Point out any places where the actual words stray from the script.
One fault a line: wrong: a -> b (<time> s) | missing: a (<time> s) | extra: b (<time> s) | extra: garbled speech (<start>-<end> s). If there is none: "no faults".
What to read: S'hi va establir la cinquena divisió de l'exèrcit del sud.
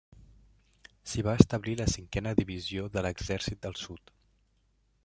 no faults